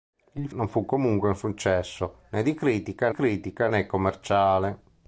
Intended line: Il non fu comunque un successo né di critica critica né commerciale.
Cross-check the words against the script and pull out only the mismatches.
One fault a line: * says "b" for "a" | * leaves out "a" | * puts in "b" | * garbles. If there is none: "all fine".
all fine